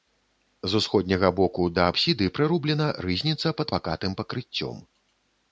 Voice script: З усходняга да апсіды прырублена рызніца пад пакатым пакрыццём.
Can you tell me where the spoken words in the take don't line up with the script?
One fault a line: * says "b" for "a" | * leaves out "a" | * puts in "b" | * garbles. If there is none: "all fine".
* puts in "боку"